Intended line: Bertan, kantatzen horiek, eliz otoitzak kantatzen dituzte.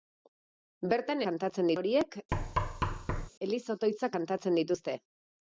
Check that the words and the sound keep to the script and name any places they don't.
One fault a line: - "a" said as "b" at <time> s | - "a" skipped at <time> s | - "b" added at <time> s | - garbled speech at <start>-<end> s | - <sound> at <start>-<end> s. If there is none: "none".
- thud at 2.3-3.3 s